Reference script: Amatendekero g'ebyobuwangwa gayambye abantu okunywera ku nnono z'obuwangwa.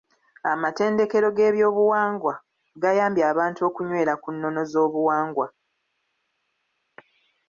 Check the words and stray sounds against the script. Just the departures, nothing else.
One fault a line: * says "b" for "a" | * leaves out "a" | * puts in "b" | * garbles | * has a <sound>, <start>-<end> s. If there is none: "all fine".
all fine